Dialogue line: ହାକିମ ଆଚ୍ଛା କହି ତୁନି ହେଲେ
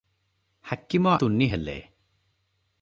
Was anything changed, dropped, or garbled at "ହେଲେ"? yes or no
no